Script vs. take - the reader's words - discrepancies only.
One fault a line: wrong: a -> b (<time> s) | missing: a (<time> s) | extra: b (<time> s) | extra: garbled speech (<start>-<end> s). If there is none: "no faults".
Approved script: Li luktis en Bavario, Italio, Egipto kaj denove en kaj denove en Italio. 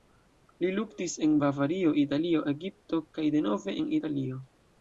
missing: kaj denove en (3.9 s)